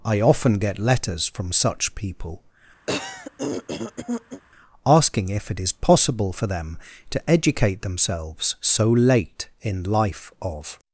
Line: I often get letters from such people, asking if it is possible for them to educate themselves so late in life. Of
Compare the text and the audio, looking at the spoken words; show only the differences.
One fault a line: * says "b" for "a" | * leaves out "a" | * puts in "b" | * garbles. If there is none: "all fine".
all fine